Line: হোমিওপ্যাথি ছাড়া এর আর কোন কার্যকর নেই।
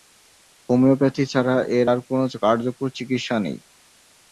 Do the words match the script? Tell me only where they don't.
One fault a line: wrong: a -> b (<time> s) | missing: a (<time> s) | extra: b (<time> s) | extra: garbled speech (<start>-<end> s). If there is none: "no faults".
extra: চিকিৎসা (3.0 s)